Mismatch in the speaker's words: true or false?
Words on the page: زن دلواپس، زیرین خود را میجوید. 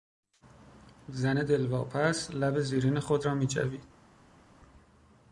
true